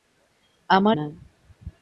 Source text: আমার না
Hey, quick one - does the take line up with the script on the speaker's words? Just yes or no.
yes